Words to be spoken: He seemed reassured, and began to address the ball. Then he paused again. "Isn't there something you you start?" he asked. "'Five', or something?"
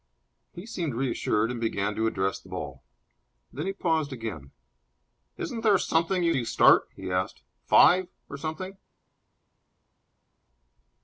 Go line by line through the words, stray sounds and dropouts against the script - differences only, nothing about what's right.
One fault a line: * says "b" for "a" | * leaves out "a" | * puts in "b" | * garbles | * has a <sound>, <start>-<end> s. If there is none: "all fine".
all fine